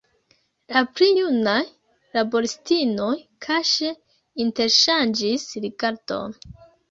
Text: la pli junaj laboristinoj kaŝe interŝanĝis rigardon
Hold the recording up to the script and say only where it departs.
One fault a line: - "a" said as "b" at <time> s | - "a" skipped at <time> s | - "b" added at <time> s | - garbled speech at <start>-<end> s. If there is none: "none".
none